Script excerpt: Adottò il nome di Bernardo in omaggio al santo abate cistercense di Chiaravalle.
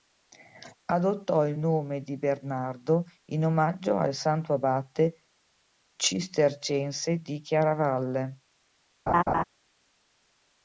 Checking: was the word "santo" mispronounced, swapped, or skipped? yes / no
no